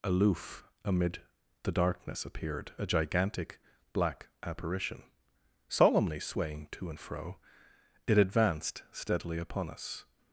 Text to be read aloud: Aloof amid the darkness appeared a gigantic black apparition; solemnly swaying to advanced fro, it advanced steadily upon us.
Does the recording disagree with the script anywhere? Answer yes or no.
yes